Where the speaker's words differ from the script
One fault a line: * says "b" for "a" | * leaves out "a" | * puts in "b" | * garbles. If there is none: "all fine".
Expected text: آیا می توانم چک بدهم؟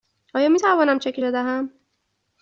all fine